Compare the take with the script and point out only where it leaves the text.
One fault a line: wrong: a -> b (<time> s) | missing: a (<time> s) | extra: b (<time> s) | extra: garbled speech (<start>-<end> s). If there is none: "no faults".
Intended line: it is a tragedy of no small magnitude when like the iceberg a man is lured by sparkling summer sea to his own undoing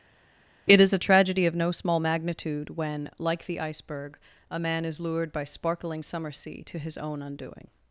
no faults